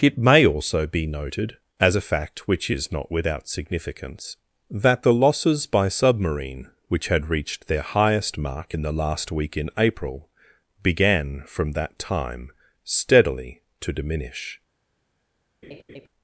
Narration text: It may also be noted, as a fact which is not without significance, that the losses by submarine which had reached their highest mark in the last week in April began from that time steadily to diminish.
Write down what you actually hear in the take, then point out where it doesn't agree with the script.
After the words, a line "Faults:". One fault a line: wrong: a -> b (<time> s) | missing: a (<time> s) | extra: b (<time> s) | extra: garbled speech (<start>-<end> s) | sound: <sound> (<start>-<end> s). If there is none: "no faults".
It may also be noted, as a fact which is not without significance, that the losses by submarine which had reached their highest mark in the last week in April began from that time steadily to diminish.
Faults:
sound: laugh (15.6-16.1 s)